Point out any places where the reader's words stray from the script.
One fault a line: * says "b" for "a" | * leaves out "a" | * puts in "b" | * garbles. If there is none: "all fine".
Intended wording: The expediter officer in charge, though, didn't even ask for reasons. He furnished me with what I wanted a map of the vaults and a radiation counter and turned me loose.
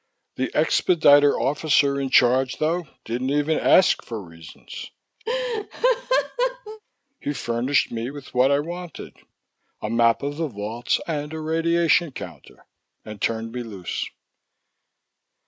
all fine